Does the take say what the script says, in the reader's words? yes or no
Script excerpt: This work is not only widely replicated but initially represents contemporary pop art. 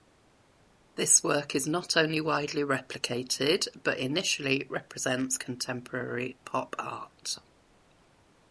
yes